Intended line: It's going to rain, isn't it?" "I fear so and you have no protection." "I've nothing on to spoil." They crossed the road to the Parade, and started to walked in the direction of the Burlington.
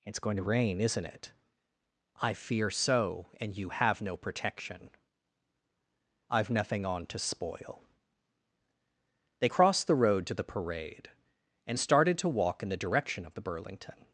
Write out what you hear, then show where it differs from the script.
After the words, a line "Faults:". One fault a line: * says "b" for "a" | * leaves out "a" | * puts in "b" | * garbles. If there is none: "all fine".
It's going to rain, isn't it?" "I fear so and you have no protection." "I've nothing on to spoil." They crossed the road to the Parade, and started to walk in the direction of the Burlington.
Faults:
* says "walk" for "walked"